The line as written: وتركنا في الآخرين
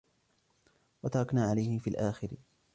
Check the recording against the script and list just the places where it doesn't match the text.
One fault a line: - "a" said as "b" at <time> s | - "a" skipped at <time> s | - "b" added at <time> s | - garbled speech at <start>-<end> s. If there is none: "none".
- "عليه" added at 1.5 s